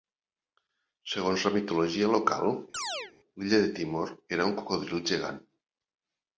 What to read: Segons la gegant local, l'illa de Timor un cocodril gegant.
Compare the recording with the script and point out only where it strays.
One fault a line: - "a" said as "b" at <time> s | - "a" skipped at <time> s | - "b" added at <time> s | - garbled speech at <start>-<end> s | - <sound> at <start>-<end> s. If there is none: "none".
- "gegant" said as "mitologia" at 1.6 s
- chirp at 2.7-3.1 s
- "era" added at 4.4 s